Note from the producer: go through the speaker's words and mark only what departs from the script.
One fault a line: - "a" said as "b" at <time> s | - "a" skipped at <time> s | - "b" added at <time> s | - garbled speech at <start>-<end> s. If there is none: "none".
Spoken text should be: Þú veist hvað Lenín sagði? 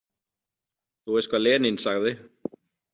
none